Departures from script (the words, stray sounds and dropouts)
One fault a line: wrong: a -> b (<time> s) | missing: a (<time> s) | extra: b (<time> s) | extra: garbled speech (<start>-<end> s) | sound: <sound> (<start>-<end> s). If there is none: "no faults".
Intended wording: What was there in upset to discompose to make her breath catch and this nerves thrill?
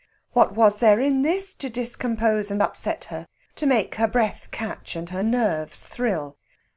wrong: upset -> this (1.2 s)
extra: and upset her (2.5 s)
wrong: this -> her (5.1 s)